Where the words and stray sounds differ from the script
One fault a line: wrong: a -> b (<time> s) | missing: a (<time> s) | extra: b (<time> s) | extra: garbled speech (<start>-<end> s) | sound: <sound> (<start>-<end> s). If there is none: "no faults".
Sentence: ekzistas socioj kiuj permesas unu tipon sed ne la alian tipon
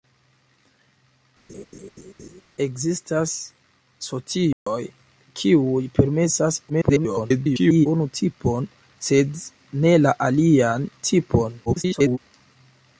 sound: laugh (1.5-2.4 s)
sound: dropout (4.5-4.7 s)
extra: garbled speech (6.7-7.9 s)
extra: garbled speech (11.7-12.2 s)